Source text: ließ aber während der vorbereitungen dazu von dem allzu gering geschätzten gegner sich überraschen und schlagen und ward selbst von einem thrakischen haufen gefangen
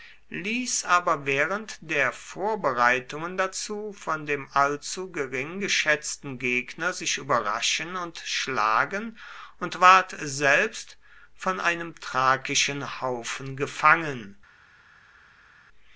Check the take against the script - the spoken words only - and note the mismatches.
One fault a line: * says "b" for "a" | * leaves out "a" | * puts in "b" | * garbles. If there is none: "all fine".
all fine